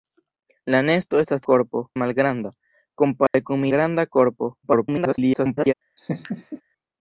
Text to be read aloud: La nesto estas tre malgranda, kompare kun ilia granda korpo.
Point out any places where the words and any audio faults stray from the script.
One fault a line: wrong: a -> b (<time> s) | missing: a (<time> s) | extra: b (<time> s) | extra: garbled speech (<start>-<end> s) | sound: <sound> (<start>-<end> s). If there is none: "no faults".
wrong: tre -> korpo (1.5 s)
sound: dropout (3.3-3.3 s)
missing: ilia (3.7 s)
extra: garbled speech (4.6-5.7 s)
sound: laugh (6.0-6.6 s)